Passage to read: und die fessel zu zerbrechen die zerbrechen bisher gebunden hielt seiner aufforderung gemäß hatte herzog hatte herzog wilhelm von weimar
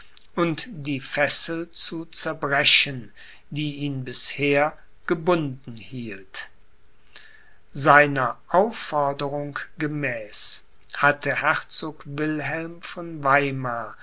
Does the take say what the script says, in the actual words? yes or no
no